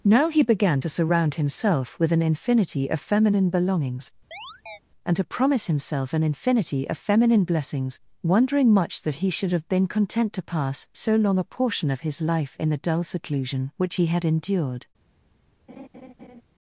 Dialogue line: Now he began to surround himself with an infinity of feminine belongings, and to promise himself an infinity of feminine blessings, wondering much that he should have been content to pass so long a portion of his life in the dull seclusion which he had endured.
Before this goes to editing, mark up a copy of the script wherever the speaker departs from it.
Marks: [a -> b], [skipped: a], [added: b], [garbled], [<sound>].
Now he began to surround himself with an infinity of feminine belongings, [chirp] and to promise himself an infinity of feminine blessings, wondering much that he should have been content to pass so long a portion of his life in the dull seclusion which he had endured. [laugh]